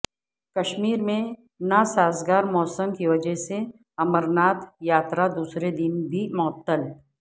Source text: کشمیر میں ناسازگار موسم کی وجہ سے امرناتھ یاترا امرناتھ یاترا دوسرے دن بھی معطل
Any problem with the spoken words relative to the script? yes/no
yes